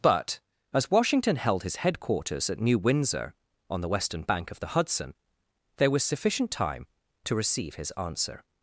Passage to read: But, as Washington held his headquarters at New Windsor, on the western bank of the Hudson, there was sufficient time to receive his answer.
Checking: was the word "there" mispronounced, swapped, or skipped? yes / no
no